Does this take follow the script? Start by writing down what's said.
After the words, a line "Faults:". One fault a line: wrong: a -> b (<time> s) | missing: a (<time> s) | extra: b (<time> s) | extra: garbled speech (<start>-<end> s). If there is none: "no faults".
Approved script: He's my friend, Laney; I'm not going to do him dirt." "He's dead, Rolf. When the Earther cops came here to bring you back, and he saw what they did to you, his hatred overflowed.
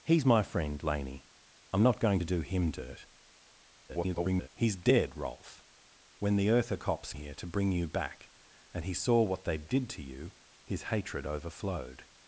He's my friend, Laney; I'm not going to do him dirt." [garbled] "He's dead, Rolf. When the Earther cops here to bring you back, and he saw what they did to you, his hatred overflowed.
Faults:
extra: garbled speech (3.9-4.5 s)
missing: came (7.1 s)